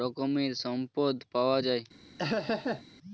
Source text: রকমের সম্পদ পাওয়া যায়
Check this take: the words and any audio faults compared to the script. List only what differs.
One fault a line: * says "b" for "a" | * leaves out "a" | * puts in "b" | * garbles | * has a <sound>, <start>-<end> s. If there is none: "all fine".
* has a laugh, 2.2-2.8 s